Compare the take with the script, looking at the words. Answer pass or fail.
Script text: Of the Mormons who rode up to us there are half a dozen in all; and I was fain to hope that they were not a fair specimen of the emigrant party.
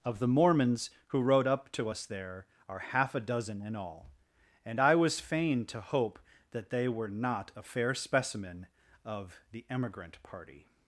pass